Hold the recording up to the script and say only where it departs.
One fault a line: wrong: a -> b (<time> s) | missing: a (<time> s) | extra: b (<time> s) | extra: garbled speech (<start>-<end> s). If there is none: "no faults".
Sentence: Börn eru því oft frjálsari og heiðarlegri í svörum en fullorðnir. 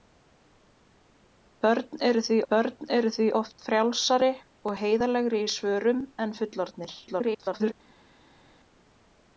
extra: börn eru því (2.5 s)
extra: garbled speech (7.1-7.7 s)